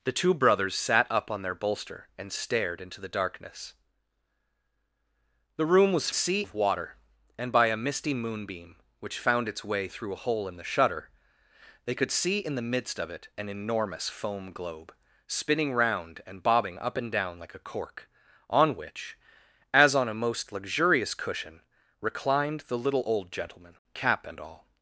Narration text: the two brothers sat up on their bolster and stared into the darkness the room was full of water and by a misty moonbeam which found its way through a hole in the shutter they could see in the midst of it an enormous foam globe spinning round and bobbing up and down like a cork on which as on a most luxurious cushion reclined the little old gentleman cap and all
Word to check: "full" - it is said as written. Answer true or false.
false